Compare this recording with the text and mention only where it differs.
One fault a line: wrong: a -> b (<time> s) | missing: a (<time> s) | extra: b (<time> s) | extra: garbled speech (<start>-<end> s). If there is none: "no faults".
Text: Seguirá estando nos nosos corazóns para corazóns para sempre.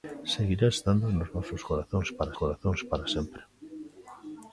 no faults